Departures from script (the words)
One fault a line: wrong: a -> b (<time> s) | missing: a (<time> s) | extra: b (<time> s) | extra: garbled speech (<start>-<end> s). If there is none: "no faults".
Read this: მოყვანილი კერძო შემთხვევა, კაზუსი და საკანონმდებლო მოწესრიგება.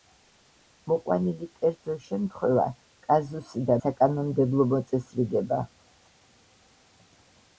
no faults